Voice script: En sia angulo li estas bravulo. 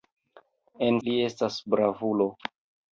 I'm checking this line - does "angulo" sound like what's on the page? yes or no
no